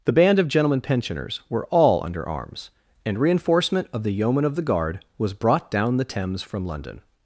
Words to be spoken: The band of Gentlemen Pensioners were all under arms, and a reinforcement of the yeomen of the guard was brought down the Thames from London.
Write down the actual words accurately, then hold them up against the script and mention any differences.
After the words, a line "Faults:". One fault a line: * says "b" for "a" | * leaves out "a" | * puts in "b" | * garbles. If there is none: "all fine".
The band of Gentlemen Pensioners were all under arms, and reinforcement of the yeomen of the guard was brought down the Thames from London.
Faults:
* leaves out "a"